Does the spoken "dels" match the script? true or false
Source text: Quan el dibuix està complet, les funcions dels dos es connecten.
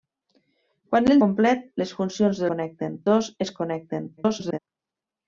false